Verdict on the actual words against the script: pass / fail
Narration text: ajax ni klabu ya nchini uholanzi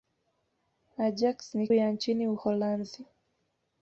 fail